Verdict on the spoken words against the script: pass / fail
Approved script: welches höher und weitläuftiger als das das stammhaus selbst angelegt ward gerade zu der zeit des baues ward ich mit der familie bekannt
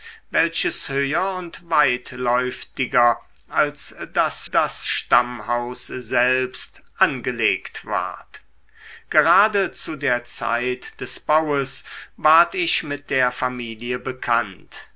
pass